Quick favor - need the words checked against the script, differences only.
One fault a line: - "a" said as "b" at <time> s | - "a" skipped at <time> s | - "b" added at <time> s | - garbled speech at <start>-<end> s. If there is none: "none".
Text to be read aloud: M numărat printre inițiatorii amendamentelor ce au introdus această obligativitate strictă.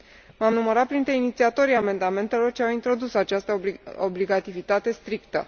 - "am" added at 0.4 s